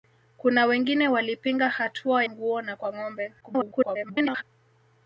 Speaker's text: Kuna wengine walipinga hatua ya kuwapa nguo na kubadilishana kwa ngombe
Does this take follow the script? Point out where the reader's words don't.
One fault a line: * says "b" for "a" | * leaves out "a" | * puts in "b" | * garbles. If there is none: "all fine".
* leaves out "ya kuwapa"
* leaves out "kubadilishana"
* garbles